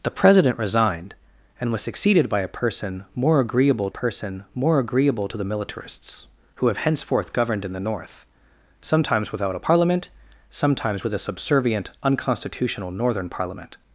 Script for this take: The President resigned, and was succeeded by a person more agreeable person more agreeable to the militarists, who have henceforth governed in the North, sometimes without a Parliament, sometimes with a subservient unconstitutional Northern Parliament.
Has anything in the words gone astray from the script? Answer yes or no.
no